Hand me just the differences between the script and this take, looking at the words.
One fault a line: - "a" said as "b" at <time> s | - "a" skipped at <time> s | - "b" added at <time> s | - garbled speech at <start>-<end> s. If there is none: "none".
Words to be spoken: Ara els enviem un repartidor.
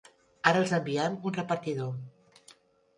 none